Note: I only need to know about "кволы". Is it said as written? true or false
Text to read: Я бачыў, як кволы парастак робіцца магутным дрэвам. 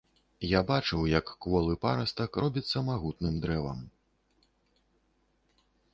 true